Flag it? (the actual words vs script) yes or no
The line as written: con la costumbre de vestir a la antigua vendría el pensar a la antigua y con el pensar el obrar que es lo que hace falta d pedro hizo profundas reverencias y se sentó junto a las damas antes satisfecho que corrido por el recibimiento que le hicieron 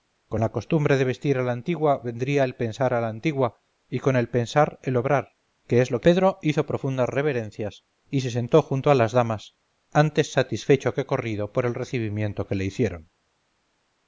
yes